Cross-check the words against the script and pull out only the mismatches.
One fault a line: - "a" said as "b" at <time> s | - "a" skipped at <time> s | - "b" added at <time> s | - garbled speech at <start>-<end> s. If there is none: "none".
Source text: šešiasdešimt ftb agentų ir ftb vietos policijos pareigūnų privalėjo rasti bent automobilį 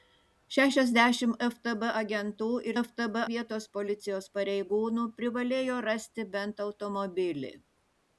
none